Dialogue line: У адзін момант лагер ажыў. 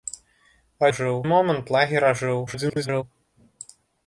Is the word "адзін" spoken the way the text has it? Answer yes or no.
no